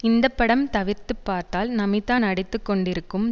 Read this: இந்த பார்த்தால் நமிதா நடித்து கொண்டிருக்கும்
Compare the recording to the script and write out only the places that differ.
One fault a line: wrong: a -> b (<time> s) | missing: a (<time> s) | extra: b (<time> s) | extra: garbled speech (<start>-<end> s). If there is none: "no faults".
extra: படம் தவிர்த்து (0.3 s)